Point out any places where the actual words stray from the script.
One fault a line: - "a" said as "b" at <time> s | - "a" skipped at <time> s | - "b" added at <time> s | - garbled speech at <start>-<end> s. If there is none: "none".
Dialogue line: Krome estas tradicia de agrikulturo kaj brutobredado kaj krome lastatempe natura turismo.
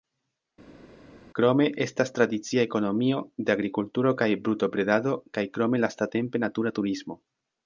- "ekonomio" added at 2.7 s